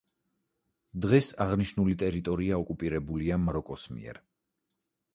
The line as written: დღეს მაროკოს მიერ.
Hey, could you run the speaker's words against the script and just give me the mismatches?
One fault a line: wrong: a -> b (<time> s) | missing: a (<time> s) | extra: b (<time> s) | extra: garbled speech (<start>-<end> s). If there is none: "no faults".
extra: აღნიშნული ტერიტორია ოკუპირებულია (1.4 s)